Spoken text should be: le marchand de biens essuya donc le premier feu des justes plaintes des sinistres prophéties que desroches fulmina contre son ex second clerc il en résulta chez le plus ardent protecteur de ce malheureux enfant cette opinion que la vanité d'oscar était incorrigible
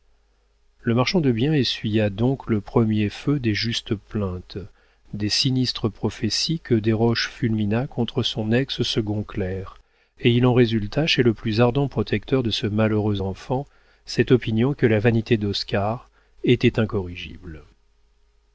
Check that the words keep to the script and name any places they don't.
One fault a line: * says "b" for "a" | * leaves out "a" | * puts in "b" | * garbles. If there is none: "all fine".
* puts in "et"